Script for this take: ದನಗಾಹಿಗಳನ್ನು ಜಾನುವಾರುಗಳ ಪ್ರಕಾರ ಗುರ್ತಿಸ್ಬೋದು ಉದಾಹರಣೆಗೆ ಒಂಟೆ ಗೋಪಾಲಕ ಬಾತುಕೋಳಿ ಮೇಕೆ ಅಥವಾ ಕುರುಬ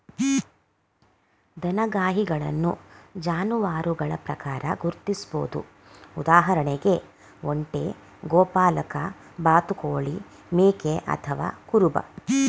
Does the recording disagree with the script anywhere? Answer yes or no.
no